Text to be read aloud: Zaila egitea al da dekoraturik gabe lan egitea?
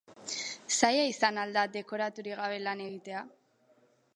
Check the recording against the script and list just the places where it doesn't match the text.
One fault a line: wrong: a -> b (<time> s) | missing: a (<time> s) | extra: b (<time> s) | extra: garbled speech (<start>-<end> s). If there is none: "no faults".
wrong: egitea -> izan (1.1 s)